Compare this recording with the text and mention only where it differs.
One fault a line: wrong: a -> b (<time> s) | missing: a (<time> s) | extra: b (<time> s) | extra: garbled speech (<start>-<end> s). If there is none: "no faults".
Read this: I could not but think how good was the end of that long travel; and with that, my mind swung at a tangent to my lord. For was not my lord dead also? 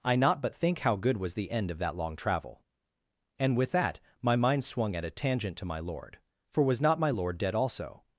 missing: could (0.1 s)